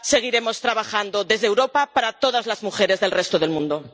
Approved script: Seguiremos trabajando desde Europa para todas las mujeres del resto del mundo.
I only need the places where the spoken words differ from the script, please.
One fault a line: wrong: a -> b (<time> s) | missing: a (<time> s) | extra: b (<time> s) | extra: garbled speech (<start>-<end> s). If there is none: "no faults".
no faults